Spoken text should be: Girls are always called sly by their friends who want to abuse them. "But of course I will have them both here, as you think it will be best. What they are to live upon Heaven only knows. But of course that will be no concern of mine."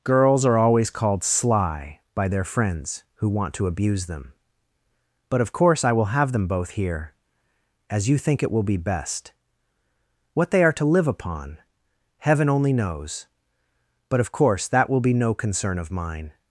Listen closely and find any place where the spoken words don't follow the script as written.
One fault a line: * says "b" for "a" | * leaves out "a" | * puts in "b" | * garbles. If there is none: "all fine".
all fine